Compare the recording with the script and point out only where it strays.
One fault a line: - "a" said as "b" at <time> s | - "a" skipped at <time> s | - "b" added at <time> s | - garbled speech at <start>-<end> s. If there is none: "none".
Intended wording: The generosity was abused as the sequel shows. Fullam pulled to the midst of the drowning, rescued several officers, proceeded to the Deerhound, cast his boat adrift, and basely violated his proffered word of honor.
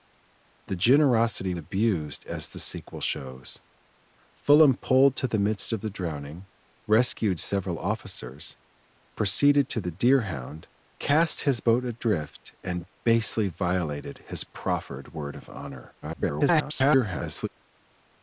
- "was" skipped at 1.5 s
- garbled speech at 16.0-17.5 s